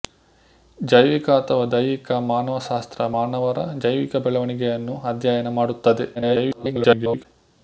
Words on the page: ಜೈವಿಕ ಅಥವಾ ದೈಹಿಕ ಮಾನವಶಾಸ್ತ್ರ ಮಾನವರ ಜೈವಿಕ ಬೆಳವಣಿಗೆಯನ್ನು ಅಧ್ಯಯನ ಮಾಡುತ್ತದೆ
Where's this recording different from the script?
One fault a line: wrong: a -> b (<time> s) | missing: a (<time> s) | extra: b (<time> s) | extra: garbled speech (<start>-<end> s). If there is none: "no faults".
extra: garbled speech (6.1-7.3 s)